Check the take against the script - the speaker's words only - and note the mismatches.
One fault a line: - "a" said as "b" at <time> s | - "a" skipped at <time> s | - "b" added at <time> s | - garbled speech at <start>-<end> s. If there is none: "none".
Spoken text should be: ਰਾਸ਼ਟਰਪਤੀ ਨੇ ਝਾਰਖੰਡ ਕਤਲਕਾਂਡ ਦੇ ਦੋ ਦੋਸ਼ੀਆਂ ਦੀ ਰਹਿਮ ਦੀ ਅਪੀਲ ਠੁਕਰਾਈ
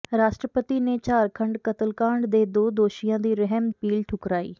- "ਦੀ" skipped at 3.7 s